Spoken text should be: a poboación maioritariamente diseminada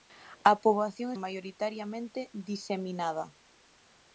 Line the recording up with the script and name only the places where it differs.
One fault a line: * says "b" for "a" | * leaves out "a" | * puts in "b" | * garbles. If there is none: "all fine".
all fine